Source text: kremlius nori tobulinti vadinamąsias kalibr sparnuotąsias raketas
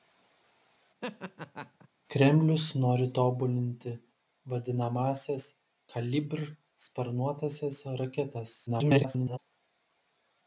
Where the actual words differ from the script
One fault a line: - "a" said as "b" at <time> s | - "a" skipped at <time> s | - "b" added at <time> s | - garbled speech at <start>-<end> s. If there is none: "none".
- garbled speech at 8.7-9.4 s